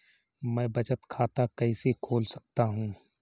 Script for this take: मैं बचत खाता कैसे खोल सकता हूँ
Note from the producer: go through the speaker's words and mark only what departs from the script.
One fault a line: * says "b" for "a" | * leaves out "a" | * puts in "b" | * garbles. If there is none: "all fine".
all fine